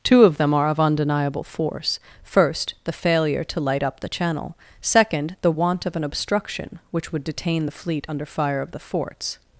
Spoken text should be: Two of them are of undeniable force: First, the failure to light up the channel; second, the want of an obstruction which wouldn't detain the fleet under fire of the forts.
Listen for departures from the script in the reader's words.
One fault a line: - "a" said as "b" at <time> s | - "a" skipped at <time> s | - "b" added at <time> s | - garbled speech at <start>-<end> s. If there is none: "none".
- "wouldn't" said as "would" at 7.1 s